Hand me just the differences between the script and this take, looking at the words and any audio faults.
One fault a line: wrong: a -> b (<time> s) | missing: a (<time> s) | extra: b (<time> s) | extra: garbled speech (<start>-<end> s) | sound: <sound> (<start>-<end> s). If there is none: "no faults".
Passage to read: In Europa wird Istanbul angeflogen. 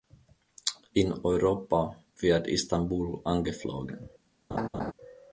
sound: laugh (4.5-4.9 s)